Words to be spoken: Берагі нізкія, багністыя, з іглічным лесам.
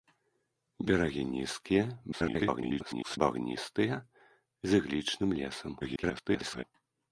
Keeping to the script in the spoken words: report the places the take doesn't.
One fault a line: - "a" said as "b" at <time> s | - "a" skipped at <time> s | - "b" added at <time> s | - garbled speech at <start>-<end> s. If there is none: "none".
- garbled speech at 2.1-3.2 s
- garbled speech at 5.8-6.6 s